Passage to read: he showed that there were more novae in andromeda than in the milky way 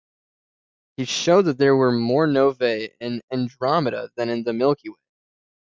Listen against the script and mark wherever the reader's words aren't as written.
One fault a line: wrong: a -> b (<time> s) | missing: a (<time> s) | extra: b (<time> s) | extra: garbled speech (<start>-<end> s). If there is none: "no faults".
no faults